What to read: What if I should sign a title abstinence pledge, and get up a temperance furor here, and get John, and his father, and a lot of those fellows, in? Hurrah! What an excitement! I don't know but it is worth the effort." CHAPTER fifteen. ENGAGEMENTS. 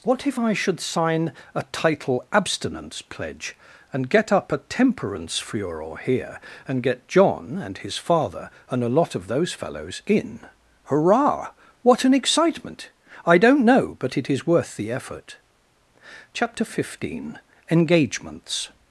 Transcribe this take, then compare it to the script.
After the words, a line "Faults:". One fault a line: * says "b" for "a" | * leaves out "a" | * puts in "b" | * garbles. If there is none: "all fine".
What if I should sign a title abstinence pledge, and get up a temperance furor here, and get John, and his father, and a lot of those fellows, in? Hurrah! What an excitement! I don't know but it is worth the effort." CHAPTER fifteen. ENGAGEMENTS.
Faults:
all fine